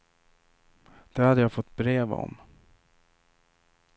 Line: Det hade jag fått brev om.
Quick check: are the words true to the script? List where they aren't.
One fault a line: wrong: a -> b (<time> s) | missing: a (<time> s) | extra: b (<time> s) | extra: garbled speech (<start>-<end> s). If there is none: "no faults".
no faults